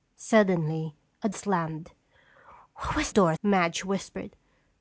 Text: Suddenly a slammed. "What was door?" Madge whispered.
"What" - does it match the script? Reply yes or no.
yes